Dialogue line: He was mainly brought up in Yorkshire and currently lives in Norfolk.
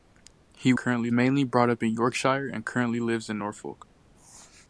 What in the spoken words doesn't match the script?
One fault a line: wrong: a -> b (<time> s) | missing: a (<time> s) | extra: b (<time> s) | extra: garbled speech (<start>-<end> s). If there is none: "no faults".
wrong: was -> currently (0.8 s)